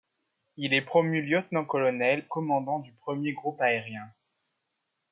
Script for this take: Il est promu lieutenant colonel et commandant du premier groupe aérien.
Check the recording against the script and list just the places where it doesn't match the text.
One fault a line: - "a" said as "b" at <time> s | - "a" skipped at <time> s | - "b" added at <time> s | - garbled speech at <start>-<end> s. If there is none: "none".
- "et" skipped at 2.2 s